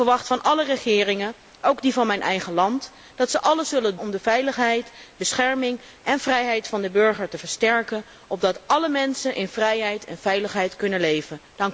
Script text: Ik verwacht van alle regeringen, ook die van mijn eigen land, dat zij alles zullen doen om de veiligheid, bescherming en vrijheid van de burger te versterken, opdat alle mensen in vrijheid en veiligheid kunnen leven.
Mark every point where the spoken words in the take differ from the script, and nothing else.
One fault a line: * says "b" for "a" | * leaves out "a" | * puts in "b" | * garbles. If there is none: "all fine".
* leaves out "doen"